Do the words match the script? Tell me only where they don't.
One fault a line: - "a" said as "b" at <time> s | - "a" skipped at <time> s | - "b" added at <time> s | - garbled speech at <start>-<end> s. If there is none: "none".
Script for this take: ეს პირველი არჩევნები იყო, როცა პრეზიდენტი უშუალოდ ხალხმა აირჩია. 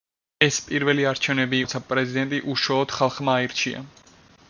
- "იყო" skipped at 1.6 s